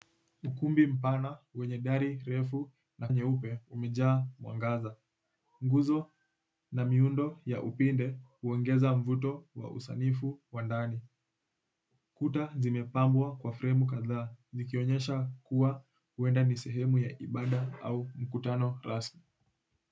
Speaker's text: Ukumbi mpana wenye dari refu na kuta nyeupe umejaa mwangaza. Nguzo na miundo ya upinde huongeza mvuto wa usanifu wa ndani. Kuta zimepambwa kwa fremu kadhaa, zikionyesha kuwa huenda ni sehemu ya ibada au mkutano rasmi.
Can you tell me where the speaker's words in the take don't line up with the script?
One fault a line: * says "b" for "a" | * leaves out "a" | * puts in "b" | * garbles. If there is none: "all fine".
* leaves out "kuta"